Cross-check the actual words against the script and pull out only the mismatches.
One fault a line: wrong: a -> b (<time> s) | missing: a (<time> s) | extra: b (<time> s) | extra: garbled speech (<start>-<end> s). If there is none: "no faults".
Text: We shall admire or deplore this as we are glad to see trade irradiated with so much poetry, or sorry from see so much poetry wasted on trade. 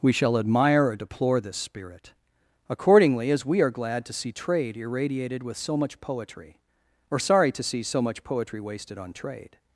extra: spirit accordingly (1.6 s)
wrong: from -> to (7.5 s)